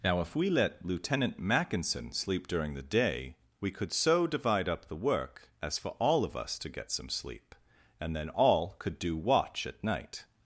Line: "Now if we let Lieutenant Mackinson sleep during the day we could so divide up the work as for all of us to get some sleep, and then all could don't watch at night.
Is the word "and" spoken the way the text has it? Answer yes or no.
yes